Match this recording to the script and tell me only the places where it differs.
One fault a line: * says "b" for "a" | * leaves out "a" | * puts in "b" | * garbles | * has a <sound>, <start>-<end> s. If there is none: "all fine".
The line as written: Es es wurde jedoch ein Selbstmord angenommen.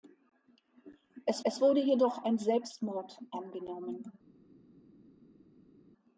all fine